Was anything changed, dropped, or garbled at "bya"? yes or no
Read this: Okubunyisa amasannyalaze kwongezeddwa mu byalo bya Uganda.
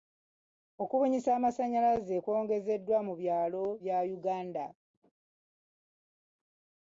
no